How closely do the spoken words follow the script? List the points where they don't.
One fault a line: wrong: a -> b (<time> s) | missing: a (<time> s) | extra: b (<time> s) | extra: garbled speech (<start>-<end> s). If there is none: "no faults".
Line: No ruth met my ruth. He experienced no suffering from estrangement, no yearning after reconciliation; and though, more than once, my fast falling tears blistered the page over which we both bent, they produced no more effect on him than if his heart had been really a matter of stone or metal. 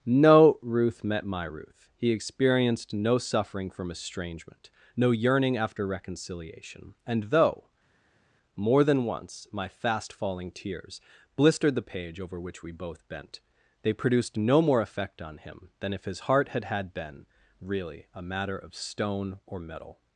extra: had (16.6 s)